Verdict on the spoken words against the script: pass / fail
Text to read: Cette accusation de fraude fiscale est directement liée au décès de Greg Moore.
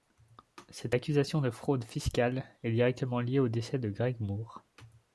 pass